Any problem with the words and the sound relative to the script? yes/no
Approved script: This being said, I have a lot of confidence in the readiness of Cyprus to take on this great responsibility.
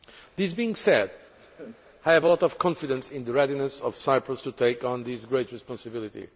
yes